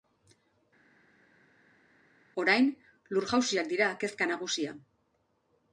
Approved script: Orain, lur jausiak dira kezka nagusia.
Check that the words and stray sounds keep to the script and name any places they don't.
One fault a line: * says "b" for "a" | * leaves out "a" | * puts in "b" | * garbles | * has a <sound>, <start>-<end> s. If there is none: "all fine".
all fine